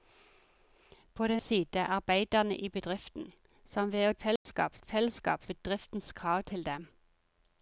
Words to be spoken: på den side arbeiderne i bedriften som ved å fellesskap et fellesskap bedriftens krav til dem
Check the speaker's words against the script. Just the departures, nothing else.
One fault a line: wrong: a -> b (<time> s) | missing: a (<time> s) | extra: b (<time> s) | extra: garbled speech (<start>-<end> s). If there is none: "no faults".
no faults